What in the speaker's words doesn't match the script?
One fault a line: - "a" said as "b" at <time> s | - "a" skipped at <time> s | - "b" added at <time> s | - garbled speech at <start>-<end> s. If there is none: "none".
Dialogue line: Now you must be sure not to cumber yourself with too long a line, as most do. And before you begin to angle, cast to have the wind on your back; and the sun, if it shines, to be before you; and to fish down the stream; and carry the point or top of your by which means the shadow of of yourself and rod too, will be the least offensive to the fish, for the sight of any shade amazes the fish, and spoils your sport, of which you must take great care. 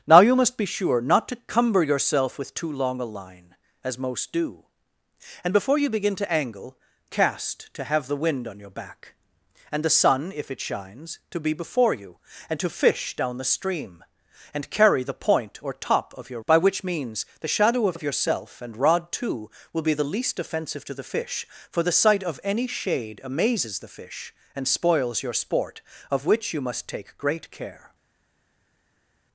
none